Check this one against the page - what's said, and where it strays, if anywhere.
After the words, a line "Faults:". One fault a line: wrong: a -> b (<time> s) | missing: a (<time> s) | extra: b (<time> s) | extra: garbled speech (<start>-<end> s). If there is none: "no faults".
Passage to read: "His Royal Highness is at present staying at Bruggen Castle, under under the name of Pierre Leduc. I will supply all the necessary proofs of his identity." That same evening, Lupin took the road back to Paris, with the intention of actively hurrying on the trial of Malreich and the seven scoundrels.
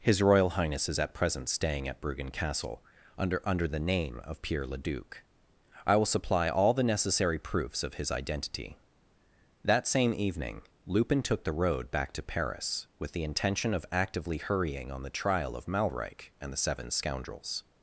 "His Royal Highness is at present staying at Bruggen Castle, under under the name of Pierre Leduc. I will supply all the necessary proofs of his identity." That same evening, Lupin took the road back to Paris, with the intention of actively hurrying on the trial of Malreich and the seven scoundrels.
Faults:
no faults